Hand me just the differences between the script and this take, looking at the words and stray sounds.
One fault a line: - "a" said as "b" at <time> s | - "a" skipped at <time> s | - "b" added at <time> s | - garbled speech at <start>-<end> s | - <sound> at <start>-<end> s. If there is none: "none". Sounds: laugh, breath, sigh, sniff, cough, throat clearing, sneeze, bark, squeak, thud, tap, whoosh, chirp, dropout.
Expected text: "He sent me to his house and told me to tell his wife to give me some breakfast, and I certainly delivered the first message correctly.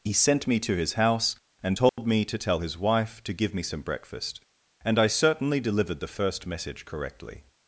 - dropout at 1.9-2.0 s